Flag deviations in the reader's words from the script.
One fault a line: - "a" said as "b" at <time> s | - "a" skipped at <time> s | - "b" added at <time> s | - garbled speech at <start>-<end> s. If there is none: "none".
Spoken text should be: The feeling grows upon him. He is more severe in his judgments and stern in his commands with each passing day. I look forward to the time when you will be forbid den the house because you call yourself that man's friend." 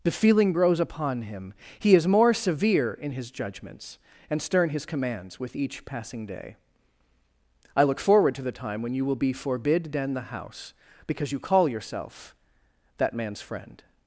- "in" skipped at 4.7 s